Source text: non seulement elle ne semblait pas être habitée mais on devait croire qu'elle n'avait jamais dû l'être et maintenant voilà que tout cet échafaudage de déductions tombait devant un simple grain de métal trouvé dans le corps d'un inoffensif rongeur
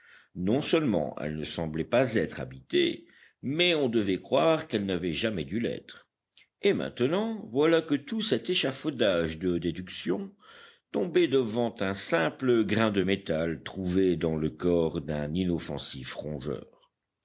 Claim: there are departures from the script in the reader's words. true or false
false